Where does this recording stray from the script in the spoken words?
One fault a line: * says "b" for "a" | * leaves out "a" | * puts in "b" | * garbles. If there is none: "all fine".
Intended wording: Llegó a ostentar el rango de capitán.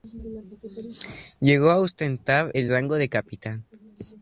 all fine